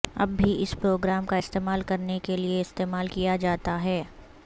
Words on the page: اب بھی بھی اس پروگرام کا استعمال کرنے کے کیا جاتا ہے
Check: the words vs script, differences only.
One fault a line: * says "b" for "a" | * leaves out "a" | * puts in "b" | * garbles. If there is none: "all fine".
* leaves out "بھی"
* puts in "لئے استعمال"